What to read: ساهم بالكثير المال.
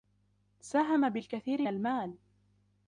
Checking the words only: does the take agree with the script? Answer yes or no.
yes